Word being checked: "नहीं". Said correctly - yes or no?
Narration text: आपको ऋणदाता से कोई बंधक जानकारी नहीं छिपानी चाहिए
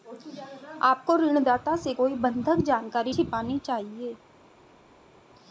no